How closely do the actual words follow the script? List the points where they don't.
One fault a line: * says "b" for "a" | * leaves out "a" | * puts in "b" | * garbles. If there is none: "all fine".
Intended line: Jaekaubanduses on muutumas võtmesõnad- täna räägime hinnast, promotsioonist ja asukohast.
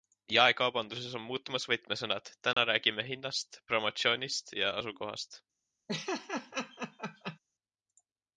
all fine